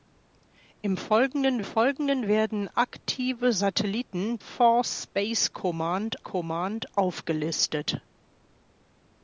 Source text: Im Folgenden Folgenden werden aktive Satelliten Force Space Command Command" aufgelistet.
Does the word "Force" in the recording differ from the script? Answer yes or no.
no